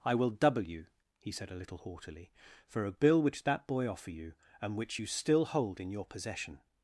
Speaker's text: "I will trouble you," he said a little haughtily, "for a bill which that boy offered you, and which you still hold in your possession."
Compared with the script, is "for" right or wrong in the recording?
right